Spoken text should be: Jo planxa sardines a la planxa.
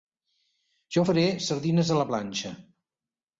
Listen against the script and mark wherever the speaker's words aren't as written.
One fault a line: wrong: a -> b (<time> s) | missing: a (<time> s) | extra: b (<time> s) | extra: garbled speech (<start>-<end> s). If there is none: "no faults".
wrong: planxa -> faré (1.1 s)